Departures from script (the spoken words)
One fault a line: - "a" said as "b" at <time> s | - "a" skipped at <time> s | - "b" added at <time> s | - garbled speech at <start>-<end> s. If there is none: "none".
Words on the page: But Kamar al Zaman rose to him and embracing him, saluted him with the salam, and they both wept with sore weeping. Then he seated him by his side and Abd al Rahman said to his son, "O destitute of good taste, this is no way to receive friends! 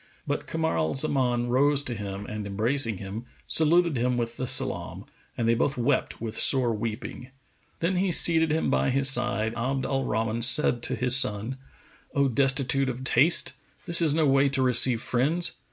- "and" skipped at 9.5 s
- "good" skipped at 13.0 s